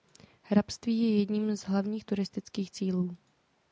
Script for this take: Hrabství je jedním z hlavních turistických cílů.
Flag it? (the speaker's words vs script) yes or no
no